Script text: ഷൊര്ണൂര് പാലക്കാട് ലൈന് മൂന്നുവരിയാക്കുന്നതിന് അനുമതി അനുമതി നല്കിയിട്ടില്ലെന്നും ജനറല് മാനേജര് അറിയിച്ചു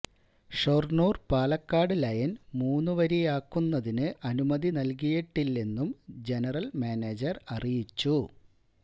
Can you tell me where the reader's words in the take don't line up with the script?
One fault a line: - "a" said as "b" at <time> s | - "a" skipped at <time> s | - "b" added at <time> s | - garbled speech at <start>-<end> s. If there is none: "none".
- "അനുമതി" skipped at 4.7 s